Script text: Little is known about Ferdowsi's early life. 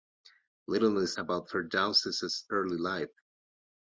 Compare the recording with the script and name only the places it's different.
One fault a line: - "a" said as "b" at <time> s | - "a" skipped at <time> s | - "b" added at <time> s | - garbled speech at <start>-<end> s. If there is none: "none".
- "known" skipped at 1.2 s